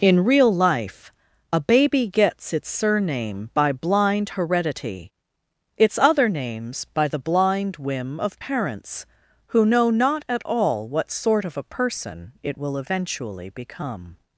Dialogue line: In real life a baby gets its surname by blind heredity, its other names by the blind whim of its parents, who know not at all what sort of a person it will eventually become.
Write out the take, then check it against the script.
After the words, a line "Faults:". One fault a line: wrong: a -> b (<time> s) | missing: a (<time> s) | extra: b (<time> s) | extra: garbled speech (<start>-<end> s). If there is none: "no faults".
In real life a baby gets its surname by blind heredity, its other names by the blind whim of parents, who know not at all what sort of a person it will eventually become.
Faults:
missing: its (8.4 s)